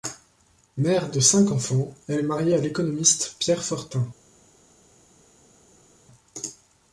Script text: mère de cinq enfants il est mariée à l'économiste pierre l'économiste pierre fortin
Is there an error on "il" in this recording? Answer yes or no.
yes